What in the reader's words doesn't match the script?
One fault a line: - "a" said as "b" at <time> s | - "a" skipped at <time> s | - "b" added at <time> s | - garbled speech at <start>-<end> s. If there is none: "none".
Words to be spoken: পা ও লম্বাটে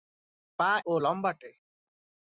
none